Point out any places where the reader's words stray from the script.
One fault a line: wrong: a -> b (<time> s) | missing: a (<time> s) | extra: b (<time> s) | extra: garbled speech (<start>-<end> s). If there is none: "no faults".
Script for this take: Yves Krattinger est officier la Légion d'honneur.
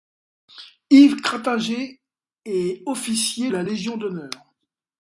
no faults